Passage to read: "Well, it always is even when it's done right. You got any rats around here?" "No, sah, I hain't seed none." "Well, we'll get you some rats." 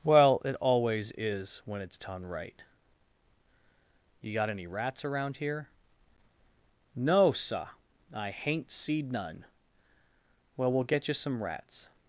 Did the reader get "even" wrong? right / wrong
wrong